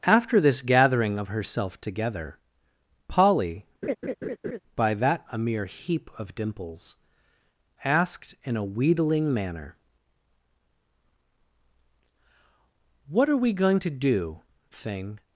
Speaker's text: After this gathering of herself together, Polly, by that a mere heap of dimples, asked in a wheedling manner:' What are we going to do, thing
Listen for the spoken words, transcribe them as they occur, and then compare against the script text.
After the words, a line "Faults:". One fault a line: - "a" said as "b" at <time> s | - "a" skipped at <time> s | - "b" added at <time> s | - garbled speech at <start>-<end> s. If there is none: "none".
After this gathering of herself together, Polly, by that a mere heap of dimples, asked in a wheedling manner:' What are we going to do, thing
Faults:
none